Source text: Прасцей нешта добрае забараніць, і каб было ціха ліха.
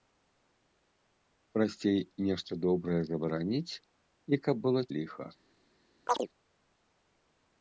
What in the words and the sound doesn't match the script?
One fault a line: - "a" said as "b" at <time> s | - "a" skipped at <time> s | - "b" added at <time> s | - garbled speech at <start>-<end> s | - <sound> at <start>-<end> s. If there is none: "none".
- "ціха" skipped at 4.8 s
- chirp at 6.1-6.3 s